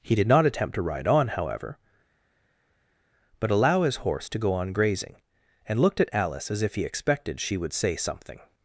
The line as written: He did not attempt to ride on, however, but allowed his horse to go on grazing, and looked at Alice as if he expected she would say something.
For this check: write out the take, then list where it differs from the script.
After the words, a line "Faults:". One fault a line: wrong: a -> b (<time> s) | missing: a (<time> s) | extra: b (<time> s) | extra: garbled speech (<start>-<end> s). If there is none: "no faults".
He did not attempt to ride on, however, but allow his horse to go on grazing, and looked at Alice as if he expected she would say something.
Faults:
wrong: allowed -> allow (3.5 s)